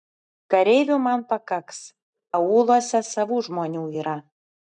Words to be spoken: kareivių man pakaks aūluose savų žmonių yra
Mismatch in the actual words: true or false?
false